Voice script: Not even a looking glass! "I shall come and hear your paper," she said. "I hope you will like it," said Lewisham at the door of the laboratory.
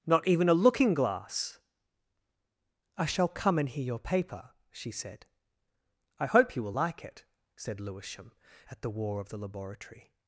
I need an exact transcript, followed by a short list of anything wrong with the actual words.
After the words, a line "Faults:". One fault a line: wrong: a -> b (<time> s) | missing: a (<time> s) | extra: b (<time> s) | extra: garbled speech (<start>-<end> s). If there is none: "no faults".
Not even a looking glass! "I shall come and hear your paper," she said. "I hope you will like it," said Lewisham at the war of the laboratory.
Faults:
wrong: door -> war (8.9 s)